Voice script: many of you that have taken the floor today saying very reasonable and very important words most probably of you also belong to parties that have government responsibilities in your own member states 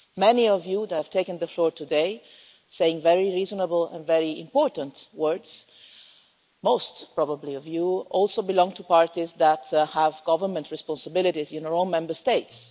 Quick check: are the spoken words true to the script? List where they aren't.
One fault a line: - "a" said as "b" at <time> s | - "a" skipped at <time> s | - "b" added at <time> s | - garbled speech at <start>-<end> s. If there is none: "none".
none